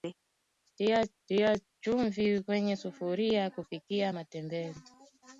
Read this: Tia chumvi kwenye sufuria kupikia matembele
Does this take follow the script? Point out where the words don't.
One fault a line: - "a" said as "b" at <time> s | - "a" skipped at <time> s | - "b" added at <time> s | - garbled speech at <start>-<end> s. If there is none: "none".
- "tia" added at 1.3 s